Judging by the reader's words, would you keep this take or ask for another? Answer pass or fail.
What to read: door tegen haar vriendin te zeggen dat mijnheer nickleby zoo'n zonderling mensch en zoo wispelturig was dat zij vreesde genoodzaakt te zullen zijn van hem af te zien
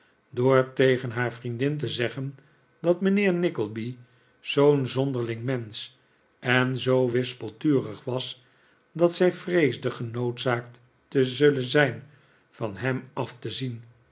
pass